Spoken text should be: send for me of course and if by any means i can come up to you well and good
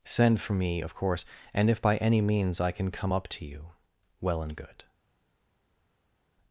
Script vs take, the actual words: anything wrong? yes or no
no